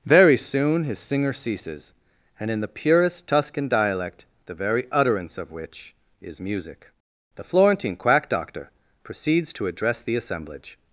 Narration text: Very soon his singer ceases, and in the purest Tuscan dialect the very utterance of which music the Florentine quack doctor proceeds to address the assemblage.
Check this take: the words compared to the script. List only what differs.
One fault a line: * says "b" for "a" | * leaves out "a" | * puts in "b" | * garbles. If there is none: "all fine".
* puts in "is"